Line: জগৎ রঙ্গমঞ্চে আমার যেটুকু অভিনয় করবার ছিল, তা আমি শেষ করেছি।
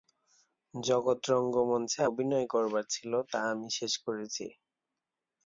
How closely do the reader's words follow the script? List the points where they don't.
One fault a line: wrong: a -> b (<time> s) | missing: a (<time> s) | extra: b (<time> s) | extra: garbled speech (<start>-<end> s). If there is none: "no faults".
missing: আমার যেটুকু (2.0 s)